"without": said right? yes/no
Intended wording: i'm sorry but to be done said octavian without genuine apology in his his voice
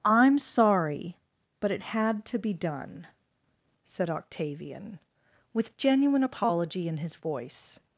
no